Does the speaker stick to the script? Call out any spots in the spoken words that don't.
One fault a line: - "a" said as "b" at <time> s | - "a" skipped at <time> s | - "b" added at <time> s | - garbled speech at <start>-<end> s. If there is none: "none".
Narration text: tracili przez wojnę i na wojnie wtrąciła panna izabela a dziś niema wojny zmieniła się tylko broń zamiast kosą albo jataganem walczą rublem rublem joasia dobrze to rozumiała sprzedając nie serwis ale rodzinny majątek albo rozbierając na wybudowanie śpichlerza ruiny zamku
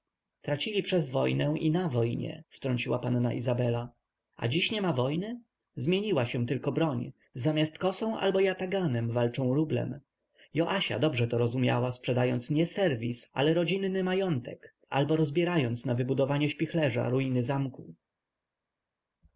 - "rublem" skipped at 10.0 s